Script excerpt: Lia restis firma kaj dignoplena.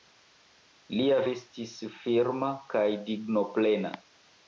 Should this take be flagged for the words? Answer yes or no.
no